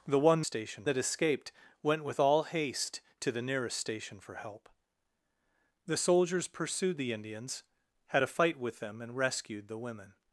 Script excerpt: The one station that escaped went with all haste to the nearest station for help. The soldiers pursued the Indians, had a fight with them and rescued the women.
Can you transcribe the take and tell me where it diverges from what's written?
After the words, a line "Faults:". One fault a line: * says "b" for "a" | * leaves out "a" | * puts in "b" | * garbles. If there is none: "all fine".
The one station that escaped went with all haste to the nearest station for help. The soldiers pursued the Indians, had a fight with them and rescued the women.
Faults:
all fine